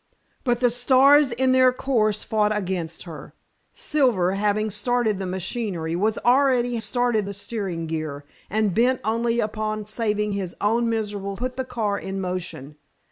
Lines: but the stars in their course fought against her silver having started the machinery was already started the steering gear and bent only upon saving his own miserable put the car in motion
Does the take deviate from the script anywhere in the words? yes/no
no